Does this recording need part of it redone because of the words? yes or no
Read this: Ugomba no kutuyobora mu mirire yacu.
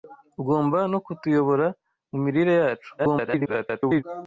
yes